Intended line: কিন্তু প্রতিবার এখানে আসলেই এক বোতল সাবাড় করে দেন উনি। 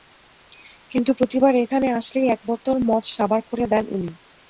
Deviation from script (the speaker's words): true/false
true